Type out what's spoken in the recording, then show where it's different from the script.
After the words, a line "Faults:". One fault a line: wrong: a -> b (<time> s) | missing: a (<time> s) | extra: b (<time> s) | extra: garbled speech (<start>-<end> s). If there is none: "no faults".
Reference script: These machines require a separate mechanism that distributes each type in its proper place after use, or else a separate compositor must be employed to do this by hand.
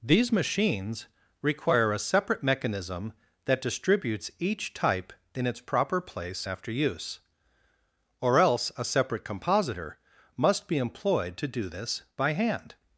These machines require a separate mechanism that distributes each type in its proper place after use, or else a separate compositor must be employed to do this by hand.
Faults:
no faults